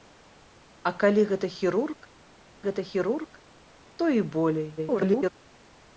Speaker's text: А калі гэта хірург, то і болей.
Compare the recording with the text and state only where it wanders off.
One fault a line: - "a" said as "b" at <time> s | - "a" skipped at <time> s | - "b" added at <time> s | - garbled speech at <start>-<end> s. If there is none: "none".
- "гэта хірург" added at 2.7 s
- garbled speech at 4.8-5.3 s